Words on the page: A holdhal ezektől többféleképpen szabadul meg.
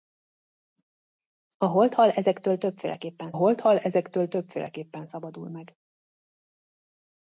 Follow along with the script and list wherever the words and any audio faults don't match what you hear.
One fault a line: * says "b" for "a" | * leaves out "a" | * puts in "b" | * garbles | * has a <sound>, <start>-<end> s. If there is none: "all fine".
* puts in "holdhal ezektől többféleképpen"